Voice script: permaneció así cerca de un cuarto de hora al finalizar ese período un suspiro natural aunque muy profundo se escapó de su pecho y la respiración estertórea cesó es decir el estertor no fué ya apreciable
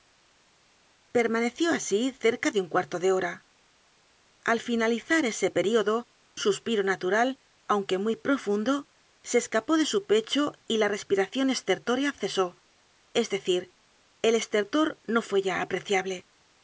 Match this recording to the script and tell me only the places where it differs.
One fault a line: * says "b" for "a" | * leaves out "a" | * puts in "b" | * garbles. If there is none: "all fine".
* leaves out "un"